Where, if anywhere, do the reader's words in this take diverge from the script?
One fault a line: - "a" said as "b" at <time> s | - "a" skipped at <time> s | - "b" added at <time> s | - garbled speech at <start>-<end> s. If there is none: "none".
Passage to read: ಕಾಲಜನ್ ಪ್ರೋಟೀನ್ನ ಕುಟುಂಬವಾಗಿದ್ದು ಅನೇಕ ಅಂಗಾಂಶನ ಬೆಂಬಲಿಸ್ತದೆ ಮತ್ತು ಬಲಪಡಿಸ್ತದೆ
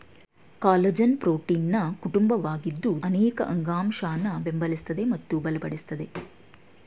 none